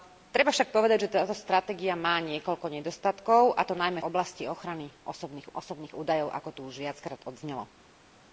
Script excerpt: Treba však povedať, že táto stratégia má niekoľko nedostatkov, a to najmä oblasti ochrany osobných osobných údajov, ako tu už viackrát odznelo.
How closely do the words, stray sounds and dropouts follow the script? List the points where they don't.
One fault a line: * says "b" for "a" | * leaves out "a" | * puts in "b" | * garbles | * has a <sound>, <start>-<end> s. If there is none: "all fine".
all fine